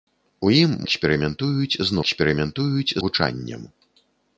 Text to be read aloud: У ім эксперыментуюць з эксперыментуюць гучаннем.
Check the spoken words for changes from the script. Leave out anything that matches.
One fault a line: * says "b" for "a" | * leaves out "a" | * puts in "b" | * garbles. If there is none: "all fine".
all fine